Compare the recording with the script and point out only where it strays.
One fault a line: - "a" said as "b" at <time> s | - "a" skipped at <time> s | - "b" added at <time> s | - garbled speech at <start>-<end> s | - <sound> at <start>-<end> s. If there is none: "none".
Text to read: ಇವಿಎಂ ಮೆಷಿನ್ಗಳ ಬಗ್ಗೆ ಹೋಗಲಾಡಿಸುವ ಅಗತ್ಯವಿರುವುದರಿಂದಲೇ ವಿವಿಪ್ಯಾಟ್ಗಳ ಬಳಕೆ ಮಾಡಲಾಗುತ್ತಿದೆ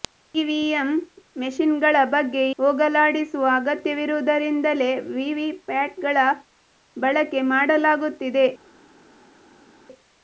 none